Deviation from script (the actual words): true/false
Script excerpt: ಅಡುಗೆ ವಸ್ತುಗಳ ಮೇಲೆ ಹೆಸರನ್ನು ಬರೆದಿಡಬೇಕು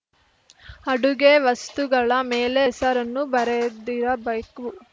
false